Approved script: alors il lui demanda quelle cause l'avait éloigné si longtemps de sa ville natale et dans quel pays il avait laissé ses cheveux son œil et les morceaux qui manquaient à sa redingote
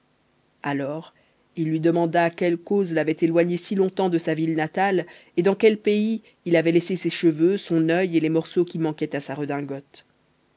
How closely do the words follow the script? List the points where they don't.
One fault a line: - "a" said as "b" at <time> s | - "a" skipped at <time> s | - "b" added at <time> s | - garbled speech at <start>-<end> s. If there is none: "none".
none